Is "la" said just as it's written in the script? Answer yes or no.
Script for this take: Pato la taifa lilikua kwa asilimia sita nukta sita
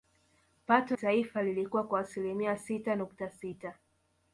no